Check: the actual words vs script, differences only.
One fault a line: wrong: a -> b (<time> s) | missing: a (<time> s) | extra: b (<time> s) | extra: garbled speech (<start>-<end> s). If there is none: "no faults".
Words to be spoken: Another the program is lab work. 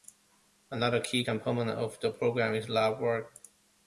extra: key component of (1.0 s)